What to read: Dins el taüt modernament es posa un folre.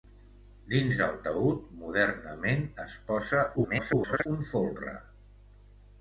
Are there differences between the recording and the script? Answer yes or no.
yes